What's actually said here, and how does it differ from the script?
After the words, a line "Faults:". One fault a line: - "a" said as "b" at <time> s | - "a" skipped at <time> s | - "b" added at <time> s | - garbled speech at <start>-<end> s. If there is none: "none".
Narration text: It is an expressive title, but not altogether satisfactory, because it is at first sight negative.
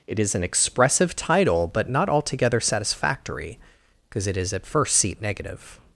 It is an expressive title, but not altogether satisfactory, because it is at first seat negative.
Faults:
- "sight" said as "seat" at 5.0 s